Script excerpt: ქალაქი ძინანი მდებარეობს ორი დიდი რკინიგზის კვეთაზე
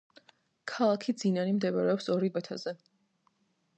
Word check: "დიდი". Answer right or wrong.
wrong